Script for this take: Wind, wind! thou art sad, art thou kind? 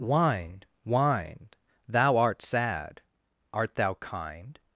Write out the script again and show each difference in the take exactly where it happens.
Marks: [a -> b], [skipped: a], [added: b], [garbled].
Wind, wind! thou art sad, art thou kind?